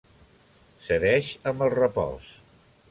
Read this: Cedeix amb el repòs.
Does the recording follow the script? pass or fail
pass